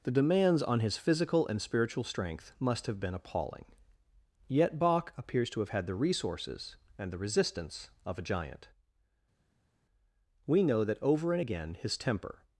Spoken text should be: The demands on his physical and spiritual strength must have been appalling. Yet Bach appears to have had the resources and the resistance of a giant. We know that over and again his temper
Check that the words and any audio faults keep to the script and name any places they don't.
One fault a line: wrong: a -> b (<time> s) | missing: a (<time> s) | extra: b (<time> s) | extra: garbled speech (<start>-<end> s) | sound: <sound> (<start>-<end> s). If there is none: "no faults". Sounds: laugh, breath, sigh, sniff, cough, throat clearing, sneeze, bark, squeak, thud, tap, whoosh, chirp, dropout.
no faults